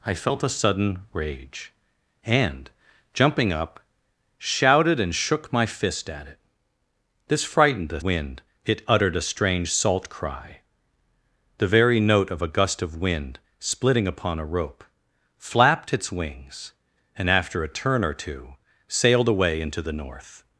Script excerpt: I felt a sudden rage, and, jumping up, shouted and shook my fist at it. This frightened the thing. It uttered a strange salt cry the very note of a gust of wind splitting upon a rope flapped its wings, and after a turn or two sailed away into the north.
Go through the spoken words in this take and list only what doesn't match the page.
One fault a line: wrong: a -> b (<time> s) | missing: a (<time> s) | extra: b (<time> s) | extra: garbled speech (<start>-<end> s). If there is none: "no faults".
wrong: thing -> wind (8.0 s)